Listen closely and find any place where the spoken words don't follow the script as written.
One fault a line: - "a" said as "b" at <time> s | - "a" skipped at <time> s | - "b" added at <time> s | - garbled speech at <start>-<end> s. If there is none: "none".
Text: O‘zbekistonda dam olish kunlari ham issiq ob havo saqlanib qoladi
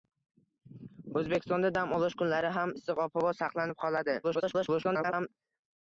- garbled speech at 4.2-5.3 s